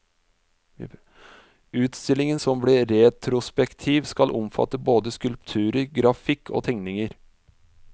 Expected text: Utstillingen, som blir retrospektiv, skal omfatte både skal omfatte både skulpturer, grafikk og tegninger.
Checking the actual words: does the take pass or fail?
fail